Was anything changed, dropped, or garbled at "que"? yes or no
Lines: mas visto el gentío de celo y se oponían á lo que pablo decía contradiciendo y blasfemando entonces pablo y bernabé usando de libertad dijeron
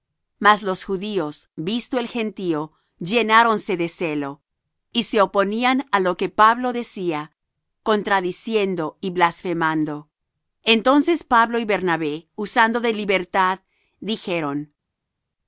no